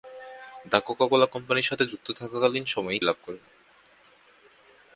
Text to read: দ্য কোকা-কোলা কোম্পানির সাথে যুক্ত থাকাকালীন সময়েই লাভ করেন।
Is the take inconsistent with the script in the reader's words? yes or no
no